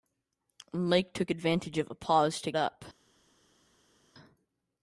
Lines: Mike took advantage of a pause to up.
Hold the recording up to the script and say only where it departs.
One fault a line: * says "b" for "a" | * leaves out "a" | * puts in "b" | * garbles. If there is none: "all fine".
all fine